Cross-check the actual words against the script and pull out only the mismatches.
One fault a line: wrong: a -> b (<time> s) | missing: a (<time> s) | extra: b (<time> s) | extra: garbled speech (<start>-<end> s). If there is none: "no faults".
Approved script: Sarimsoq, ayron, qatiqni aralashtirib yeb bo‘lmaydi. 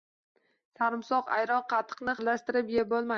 no faults